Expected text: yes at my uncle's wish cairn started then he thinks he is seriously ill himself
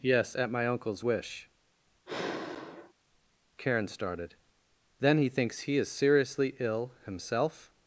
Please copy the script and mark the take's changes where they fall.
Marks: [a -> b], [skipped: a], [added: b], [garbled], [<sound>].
yes at my uncle's wish [sigh] [cairn -> karen] started then he thinks he is seriously ill himself